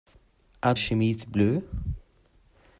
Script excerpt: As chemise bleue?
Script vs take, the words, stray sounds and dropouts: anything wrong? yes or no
no